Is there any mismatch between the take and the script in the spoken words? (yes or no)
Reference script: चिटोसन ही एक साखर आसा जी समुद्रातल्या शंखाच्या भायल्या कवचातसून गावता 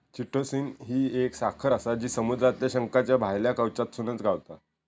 no